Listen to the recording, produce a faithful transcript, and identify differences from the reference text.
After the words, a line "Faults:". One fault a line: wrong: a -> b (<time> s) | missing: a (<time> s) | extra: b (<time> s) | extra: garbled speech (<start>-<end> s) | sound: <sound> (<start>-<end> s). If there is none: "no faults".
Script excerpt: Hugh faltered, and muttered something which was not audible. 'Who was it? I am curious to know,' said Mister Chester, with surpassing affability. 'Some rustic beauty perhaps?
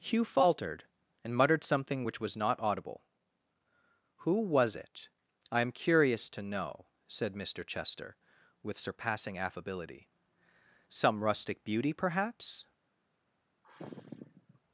Hugh faltered, and muttered something which was not audible. 'Who was it? I am curious to know,' said Mister Chester, with surpassing affability. 'Some rustic beauty perhaps?
Faults:
sound: sigh (13.6-14.6 s)